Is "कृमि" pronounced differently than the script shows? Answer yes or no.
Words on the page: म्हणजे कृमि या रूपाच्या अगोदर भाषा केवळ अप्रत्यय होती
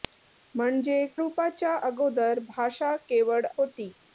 yes